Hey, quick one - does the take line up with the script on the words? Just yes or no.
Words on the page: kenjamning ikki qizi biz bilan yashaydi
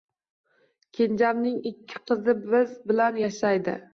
yes